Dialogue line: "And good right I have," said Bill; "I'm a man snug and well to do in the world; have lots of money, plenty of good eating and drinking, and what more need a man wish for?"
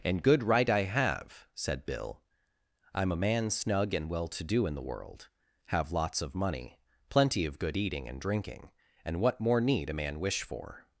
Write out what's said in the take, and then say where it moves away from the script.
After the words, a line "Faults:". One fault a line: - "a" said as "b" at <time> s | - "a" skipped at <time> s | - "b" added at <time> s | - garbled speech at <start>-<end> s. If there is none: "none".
"And good right I have," said Bill; "I'm a man snug and well to do in the world; have lots of money, plenty of good eating and drinking, and what more need a man wish for?"
Faults:
none